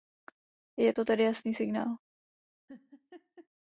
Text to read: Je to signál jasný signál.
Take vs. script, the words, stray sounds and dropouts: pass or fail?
fail